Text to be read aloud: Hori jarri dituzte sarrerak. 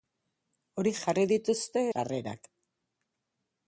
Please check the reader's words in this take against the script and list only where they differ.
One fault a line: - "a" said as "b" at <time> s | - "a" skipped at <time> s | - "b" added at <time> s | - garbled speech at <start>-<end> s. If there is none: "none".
none